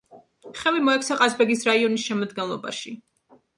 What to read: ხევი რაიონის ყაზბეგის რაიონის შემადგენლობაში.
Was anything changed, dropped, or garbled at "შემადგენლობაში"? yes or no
no